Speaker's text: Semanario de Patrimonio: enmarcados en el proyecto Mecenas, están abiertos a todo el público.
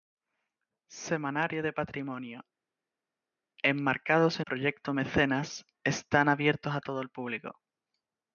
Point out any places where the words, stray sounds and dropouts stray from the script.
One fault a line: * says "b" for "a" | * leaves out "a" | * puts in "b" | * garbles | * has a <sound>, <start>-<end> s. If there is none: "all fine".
* leaves out "el"